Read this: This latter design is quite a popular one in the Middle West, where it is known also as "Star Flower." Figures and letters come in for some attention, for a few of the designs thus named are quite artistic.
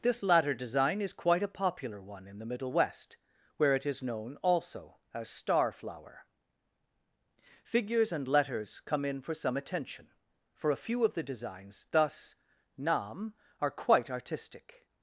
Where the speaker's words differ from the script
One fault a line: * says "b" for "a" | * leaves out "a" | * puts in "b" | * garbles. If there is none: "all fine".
* says "nam" for "named"